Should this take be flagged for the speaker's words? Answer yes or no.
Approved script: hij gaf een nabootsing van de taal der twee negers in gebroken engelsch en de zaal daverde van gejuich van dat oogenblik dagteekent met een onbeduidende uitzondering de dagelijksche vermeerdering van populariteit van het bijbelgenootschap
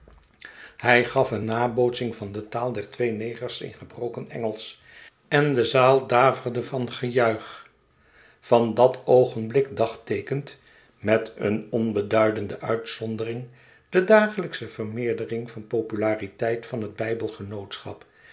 no